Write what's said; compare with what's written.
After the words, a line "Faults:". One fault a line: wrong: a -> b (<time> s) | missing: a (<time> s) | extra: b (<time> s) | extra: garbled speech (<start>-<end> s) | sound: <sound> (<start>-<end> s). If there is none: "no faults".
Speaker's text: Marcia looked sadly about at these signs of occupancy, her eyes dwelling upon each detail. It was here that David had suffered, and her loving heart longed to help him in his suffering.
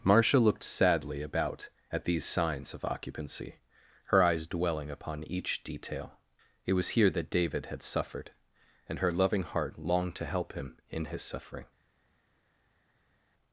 Marcia looked sadly about at these signs of occupancy, her eyes dwelling upon each detail. It was here that David had suffered, and her loving heart longed to help him in his suffering.
Faults:
no faults